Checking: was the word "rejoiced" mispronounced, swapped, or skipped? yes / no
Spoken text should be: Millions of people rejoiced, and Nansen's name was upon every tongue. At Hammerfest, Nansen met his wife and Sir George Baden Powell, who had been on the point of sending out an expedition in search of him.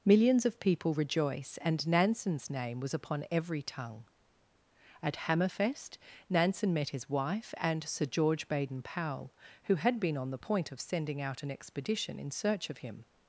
yes